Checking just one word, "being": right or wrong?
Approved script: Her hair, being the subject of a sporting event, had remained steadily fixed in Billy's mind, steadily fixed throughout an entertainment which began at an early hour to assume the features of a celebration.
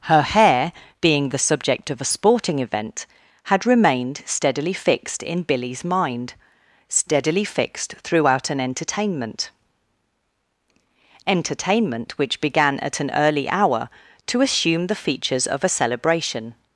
right